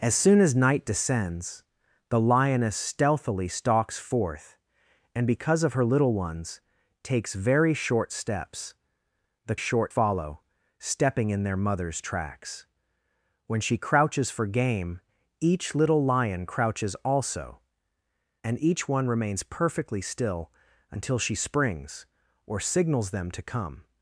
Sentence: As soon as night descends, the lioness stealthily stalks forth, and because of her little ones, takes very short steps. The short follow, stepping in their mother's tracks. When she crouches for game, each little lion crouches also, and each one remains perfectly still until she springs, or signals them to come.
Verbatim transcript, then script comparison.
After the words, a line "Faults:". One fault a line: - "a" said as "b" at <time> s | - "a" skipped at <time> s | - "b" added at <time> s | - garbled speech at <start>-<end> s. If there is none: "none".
As soon as night descends, the lioness stealthily stalks forth, and because of her little ones, takes very short steps. The short follow, stepping in their mother's tracks. When she crouches for game, each little lion crouches also, and each one remains perfectly still until she springs, or signals them to come.
Faults:
none